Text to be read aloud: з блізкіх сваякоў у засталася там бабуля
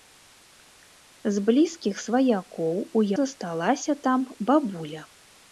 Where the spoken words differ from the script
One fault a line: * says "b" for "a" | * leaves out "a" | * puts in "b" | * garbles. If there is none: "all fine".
all fine